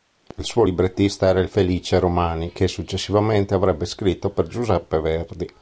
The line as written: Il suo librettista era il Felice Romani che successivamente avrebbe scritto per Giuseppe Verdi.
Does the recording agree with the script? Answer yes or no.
yes